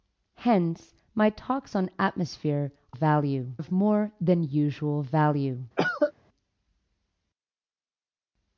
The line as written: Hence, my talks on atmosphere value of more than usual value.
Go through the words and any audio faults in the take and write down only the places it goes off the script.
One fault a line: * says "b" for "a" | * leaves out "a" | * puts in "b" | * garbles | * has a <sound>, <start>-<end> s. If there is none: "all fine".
* has a cough, 5.8-6.1 s